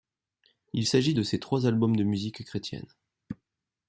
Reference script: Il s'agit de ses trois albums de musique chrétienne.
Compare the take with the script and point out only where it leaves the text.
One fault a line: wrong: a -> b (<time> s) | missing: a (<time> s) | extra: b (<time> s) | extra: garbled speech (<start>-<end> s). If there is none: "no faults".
no faults